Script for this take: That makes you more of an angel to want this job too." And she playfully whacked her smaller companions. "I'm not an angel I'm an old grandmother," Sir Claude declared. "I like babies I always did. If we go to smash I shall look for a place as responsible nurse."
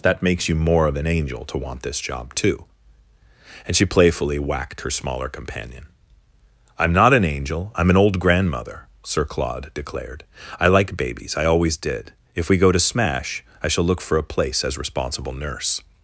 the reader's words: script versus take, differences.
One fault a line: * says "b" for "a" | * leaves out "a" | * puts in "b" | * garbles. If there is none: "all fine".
* says "companion" for "companions"